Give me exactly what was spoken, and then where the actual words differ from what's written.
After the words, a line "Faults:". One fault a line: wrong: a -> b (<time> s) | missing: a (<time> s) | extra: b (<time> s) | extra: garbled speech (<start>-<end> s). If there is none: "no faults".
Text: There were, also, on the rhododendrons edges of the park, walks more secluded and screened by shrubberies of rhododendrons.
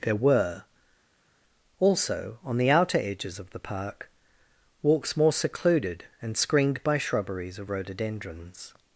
There were, also, on the outer edges of the park, walks more secluded and screened by shrubberies of rhododendrons.
Faults:
wrong: rhododendrons -> outer (2.7 s)